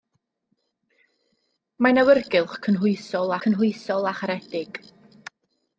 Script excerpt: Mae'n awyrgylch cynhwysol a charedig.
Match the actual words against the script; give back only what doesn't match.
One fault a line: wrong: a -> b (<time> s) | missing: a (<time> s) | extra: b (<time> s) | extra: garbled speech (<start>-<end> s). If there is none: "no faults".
extra: cynhwysol (3.5 s)